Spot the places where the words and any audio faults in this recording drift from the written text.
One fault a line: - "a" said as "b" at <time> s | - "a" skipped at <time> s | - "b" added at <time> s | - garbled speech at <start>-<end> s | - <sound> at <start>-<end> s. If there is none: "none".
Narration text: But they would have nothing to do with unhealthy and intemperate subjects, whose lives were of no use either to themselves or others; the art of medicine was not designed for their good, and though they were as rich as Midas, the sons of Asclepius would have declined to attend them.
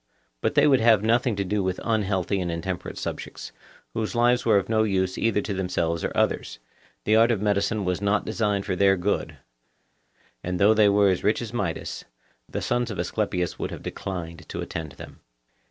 none